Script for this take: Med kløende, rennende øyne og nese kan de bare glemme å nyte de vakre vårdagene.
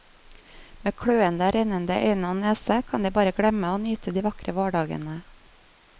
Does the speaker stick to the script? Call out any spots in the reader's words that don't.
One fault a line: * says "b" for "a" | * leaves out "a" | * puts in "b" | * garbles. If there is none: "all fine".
all fine